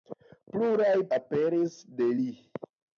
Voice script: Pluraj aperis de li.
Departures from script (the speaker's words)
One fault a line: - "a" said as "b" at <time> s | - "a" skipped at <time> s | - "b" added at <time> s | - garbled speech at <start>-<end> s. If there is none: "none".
none